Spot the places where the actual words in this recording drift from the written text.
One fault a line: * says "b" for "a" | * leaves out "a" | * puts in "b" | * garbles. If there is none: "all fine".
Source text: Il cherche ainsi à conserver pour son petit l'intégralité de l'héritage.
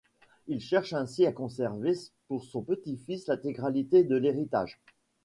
* puts in "fils"